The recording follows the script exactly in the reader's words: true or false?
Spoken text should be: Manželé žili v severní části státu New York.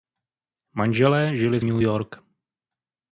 false